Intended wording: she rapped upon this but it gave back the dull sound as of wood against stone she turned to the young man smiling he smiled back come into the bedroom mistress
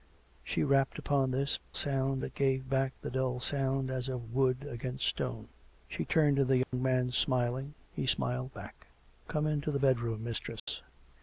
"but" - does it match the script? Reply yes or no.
no